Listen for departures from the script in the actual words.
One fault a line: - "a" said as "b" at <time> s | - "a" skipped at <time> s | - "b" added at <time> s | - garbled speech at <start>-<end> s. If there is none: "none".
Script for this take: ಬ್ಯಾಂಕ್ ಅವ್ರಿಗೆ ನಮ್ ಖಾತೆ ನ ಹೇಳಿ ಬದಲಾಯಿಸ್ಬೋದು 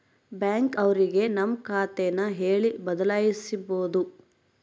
none